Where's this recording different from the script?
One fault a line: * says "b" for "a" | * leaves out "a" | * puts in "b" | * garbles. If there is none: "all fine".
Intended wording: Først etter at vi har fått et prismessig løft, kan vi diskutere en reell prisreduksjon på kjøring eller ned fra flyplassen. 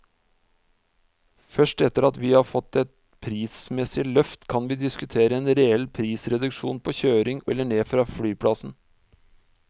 all fine